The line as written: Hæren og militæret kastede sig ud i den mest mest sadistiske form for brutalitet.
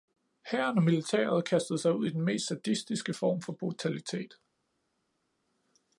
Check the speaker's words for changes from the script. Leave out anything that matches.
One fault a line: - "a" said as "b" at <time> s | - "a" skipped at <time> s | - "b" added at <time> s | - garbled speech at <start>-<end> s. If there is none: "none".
- "mest" skipped at 2.5 s